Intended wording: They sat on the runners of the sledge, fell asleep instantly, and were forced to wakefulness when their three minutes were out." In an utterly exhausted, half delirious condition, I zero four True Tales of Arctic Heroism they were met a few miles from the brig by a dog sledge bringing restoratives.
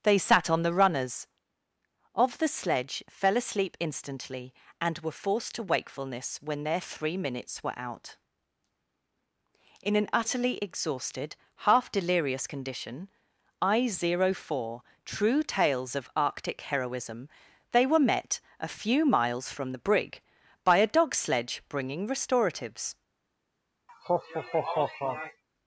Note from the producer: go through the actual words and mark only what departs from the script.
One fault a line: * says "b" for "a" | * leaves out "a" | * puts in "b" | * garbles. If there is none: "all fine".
all fine